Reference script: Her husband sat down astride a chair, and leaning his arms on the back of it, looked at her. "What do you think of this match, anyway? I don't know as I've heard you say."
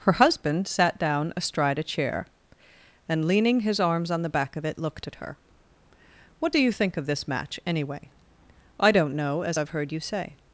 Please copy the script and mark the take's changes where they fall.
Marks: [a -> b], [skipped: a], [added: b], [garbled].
Her husband sat down astride a chair, and leaning his arms on the back of it, looked at her. "What do you think of this match, anyway? I don't know as I've heard you say."